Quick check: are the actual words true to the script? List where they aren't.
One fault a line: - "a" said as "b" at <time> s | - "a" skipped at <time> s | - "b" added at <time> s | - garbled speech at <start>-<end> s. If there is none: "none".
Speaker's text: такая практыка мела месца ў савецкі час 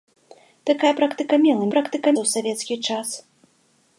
- "месца" said as "практыка" at 1.8 s